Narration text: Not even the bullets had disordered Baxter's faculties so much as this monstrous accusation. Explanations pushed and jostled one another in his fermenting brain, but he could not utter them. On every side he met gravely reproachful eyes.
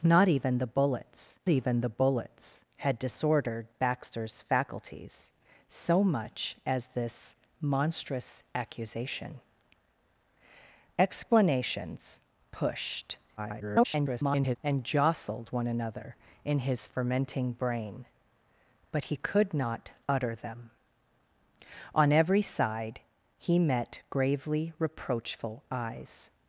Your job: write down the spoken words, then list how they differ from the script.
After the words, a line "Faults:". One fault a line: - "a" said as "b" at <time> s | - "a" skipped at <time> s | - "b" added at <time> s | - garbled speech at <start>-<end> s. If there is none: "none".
Not even the bullets even the bullets had disordered Baxter's faculties so much as this monstrous accusation. Explanations pushed [garbled] and jostled one another in his fermenting brain, but he could not utter them. On every side he met gravely reproachful eyes.
Faults:
- "even the bullets" added at 1.5 s
- garbled speech at 13.4-14.6 s